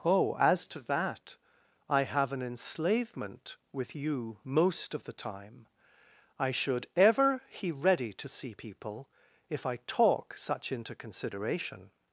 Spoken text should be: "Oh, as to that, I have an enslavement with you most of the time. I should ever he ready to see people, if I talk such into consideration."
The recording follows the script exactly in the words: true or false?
true